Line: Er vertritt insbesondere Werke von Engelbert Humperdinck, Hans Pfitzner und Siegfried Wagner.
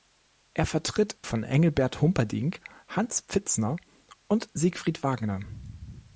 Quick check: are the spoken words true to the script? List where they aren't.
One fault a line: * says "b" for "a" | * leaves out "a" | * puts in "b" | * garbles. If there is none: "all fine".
* leaves out "insbesondere Werke"